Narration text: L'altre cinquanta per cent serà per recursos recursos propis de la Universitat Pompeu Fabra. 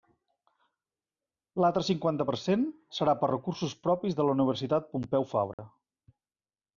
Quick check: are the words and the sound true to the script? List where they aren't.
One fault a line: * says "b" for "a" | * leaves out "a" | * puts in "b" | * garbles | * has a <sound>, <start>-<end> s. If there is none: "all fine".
* leaves out "recursos"
* has a dropout, 5.5-5.6 s